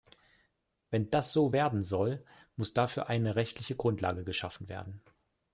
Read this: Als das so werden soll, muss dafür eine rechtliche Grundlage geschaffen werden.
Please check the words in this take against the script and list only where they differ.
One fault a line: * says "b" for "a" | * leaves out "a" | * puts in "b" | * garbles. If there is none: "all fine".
* says "Wenn" for "Als"